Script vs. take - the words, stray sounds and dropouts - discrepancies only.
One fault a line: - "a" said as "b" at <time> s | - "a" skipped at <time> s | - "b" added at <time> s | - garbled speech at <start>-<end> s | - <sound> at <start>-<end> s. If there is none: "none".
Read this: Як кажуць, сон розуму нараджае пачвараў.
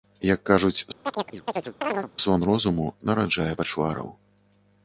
- chirp at 1.0-2.1 s